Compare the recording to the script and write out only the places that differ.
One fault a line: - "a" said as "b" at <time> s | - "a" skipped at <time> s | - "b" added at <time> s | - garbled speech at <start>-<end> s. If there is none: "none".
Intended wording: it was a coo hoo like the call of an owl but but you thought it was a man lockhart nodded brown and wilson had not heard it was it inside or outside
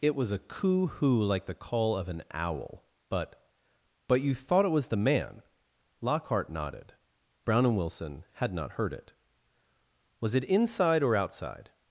- "a" said as "the" at 4.9 s